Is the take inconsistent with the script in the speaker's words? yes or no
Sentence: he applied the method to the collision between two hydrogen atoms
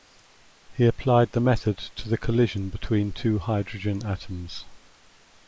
no